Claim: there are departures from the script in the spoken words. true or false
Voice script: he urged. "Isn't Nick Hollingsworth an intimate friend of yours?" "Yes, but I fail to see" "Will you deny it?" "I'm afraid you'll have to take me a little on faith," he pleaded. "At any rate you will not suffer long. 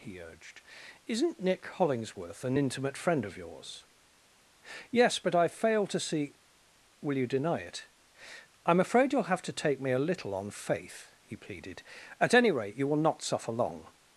false